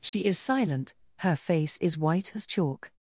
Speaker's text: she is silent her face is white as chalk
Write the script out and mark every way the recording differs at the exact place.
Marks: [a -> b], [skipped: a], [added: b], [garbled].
she is silent her face is white as chalk